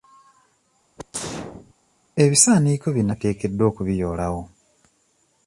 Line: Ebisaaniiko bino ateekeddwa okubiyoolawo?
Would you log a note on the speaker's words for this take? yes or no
no